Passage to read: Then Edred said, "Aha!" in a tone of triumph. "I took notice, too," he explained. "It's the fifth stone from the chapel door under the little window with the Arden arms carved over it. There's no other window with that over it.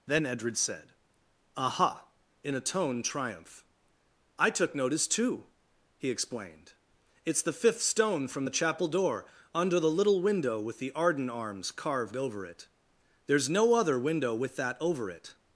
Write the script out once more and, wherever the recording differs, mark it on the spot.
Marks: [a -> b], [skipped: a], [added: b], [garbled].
Then Edred said, "Aha!" in a tone [skipped: of] triumph. "I took notice, too," he explained. "It's the fifth stone from the chapel door under the little window with the Arden arms carved over it. There's no other window with that over it.